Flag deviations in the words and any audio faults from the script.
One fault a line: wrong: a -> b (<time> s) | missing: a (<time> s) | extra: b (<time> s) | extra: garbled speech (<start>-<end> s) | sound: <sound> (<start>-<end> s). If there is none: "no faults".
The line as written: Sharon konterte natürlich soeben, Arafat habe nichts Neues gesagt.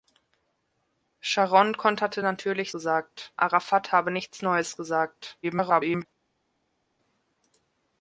wrong: soeben -> gesagt (2.7 s)
extra: garbled speech (5.4-6.1 s)